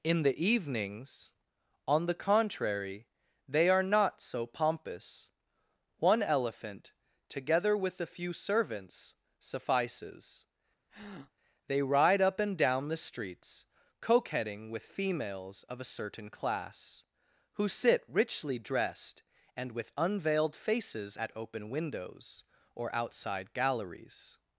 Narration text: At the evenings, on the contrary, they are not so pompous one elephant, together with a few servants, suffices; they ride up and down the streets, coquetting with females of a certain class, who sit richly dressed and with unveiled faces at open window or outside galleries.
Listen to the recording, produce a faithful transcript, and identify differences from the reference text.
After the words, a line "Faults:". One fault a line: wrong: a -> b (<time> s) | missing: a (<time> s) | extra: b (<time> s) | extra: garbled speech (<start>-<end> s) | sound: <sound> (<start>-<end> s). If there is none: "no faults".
In the evenings, on the contrary, they are not so pompous one elephant, together with a few servants, suffices; they ride up and down the streets, coquetting with females of a certain class, who sit richly dressed and with unveiled faces at open windows or outside galleries.
Faults:
wrong: At -> In (0.0 s)
sound: breath (10.9-11.3 s)
wrong: window -> windows (21.7 s)